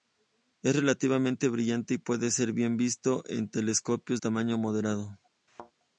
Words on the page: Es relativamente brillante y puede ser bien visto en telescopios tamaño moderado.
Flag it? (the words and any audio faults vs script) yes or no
yes